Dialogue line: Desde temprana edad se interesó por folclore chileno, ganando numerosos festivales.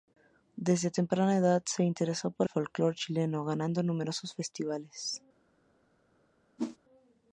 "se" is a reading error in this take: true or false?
false